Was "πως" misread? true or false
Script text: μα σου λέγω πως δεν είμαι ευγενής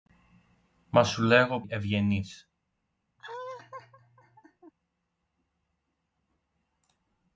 true